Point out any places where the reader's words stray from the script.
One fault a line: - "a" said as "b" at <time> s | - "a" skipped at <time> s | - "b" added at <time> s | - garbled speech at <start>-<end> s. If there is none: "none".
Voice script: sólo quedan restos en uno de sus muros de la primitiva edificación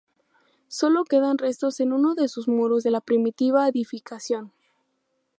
none